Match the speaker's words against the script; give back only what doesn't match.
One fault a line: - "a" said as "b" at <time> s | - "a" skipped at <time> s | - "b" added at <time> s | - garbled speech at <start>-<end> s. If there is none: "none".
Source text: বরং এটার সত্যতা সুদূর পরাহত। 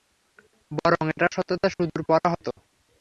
none